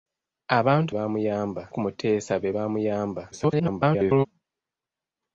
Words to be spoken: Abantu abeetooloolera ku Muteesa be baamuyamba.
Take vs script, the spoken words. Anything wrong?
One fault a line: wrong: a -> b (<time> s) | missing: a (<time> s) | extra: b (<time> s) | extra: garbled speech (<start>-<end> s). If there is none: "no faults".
wrong: abeetooloolera -> baamuyamba (0.9 s)
extra: garbled speech (3.3-4.3 s)